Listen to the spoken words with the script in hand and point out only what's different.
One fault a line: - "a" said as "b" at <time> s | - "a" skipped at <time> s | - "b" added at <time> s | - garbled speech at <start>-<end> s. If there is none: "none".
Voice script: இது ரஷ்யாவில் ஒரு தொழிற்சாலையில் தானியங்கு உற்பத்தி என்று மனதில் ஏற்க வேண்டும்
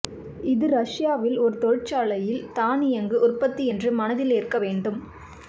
none